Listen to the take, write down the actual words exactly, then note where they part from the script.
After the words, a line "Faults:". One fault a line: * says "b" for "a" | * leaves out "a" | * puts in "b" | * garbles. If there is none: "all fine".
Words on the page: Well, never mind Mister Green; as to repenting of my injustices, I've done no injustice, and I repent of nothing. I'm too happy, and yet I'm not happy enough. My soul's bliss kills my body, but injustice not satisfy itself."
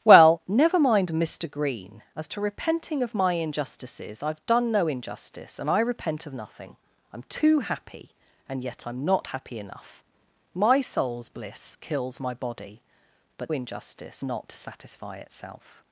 Well, never mind Mister Green; as to repenting of my injustices, I've done no injustice, and I repent of nothing. I'm too happy, and yet I'm not happy enough. My soul's bliss kills my body, but injustice not satisfy itself."
Faults:
all fine